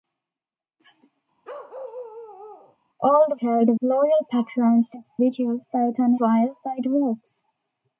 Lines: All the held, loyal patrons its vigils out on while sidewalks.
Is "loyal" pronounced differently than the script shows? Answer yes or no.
no